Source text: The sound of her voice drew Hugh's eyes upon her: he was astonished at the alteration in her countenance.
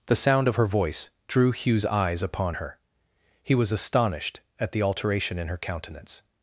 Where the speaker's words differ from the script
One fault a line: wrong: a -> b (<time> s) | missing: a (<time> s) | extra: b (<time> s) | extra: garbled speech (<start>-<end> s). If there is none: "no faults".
no faults